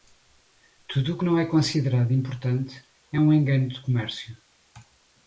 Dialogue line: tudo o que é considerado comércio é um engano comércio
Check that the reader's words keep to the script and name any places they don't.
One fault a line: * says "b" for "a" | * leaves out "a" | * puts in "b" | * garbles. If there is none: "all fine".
* puts in "não"
* says "importante" for "comércio"
* puts in "de"